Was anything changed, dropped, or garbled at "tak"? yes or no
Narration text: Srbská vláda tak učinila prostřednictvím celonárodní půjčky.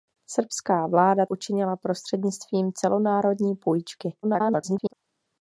yes